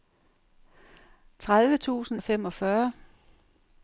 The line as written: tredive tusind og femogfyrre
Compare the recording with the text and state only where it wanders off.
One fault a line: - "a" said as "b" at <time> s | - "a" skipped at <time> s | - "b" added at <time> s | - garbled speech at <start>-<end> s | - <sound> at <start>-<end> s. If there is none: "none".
none